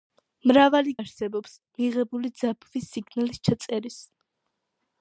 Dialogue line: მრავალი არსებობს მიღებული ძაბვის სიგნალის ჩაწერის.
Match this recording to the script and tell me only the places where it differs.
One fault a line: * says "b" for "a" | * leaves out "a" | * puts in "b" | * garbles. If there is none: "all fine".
all fine